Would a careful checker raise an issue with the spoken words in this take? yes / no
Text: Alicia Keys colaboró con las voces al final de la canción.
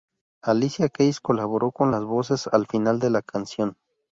no